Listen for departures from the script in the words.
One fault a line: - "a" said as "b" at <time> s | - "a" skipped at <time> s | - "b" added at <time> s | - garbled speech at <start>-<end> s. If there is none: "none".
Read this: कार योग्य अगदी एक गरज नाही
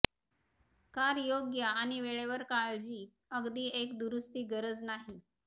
- "आणि वेळेवर काळजी" added at 1.6 s
- "दुरुस्ती" added at 4.0 s